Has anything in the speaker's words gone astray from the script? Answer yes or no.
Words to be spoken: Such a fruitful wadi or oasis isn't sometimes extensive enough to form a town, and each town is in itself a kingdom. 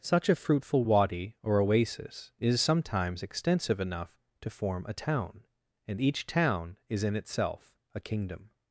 yes